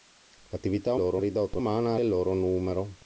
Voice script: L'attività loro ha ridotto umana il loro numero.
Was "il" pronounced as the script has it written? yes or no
yes